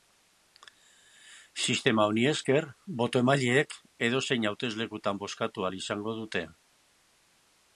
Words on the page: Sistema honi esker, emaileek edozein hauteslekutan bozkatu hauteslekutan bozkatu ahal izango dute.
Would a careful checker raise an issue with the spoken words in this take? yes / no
yes